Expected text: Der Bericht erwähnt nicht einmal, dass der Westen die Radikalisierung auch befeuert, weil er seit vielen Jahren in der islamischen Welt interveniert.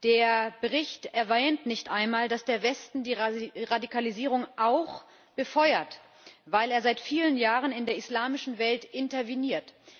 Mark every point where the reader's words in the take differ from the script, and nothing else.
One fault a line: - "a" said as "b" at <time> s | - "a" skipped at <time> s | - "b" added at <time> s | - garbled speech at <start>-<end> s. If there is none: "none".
none